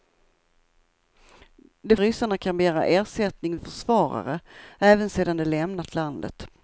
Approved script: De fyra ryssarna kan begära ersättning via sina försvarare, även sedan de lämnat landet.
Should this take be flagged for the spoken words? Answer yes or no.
yes